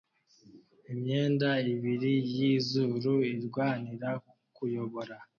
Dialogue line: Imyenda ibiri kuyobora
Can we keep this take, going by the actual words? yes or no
no